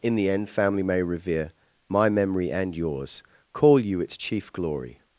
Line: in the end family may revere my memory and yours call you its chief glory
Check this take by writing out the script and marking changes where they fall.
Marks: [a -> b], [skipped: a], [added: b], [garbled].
in the end family may revere my memory and yours call you its chief glory